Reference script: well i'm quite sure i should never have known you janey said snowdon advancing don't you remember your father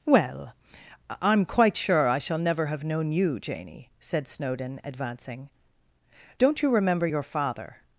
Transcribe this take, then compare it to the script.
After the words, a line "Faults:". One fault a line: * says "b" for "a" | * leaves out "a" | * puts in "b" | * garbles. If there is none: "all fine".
well i'm quite sure i shall never have known you janey said snowdon advancing don't you remember your father
Faults:
* says "shall" for "should"